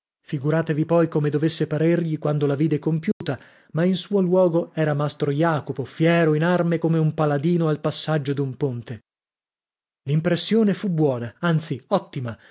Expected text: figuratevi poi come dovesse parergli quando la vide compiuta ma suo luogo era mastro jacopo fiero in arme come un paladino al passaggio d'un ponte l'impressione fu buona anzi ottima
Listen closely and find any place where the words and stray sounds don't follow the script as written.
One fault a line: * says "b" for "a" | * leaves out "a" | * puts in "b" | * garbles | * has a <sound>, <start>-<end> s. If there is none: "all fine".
* has a dropout, 3.1-3.2 s
* puts in "in"